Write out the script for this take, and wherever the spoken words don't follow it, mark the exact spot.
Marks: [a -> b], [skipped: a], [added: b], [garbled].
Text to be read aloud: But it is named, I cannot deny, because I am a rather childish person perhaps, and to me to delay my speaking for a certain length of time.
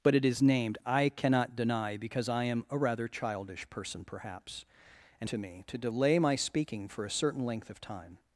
But it is named, I cannot deny, because I am a rather childish person perhaps, and to me to delay my speaking for a certain length of time.